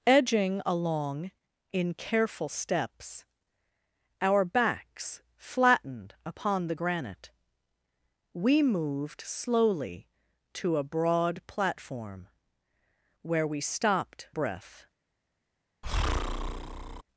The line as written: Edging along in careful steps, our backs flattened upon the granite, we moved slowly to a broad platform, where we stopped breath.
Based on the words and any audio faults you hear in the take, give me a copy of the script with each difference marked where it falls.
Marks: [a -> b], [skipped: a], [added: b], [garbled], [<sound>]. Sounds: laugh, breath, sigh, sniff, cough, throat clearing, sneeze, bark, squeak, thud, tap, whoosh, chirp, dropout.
Edging along in careful steps, our backs flattened upon the granite, we moved slowly to a broad platform, where we stopped breath. [breath]